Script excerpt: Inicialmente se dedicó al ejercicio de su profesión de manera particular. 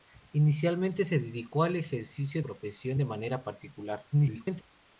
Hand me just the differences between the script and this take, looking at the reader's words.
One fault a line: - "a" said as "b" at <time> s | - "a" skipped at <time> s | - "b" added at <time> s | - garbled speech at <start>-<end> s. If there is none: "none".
- "de su" skipped at 2.4 s
- garbled speech at 4.1-4.6 s